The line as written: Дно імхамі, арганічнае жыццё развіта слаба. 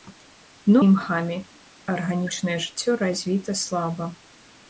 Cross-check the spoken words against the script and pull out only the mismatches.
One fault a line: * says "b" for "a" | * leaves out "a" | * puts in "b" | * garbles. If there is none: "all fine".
all fine